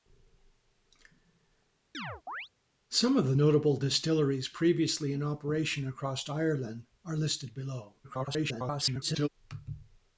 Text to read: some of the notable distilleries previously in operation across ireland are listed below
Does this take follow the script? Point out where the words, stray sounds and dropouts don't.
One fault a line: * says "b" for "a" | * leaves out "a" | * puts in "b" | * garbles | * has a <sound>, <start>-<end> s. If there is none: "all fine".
* has a chirp, 1.9-2.5 s
* garbles